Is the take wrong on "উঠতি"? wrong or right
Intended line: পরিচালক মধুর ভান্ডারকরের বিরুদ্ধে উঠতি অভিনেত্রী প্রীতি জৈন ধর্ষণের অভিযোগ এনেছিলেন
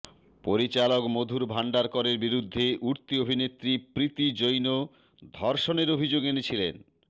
right